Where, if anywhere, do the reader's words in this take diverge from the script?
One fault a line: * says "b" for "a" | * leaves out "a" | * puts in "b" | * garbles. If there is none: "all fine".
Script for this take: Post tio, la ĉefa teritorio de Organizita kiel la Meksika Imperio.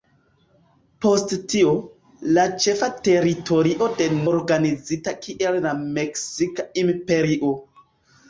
all fine